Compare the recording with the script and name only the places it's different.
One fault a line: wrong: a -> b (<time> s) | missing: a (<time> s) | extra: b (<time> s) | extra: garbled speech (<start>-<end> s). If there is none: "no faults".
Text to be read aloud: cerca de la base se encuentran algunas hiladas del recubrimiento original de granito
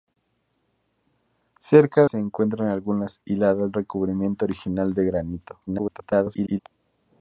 missing: de la base (2.1 s)
missing: del (3.7 s)
extra: garbled speech (5.7-6.6 s)